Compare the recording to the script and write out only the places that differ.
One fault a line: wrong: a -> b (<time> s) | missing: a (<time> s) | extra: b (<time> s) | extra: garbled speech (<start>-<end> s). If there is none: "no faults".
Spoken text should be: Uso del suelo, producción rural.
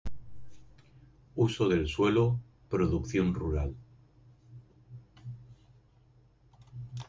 no faults